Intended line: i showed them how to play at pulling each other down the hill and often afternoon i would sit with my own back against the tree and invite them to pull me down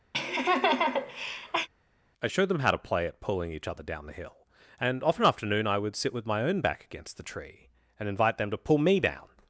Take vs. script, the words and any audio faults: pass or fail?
fail